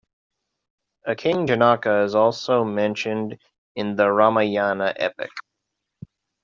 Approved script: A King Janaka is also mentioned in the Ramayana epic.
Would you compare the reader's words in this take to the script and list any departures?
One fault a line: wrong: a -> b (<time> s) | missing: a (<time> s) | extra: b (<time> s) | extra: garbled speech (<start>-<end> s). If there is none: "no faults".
no faults